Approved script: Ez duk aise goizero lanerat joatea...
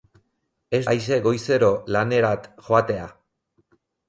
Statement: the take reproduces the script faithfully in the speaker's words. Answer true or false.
false